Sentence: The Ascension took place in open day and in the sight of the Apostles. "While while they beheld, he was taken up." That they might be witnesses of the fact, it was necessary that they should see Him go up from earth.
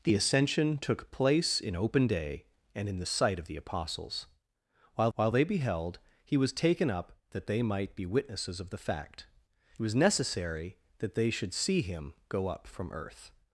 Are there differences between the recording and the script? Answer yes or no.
no